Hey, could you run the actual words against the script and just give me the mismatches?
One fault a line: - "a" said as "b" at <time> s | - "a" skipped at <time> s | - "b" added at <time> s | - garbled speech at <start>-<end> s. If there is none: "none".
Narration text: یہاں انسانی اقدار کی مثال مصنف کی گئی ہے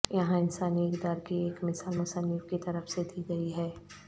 - "ایک" added at 1.4 s
- "طرف سے دی" added at 2.6 s